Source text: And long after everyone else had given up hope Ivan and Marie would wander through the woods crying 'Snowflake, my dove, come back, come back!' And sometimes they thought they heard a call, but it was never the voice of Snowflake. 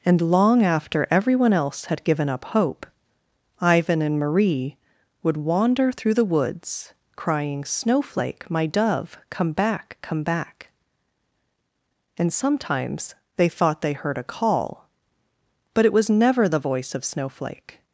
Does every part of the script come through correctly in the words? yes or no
yes